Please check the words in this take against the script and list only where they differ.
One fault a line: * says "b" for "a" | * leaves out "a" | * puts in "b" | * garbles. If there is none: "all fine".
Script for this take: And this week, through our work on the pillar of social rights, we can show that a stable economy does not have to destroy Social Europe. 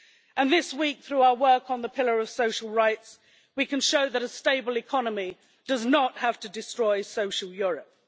all fine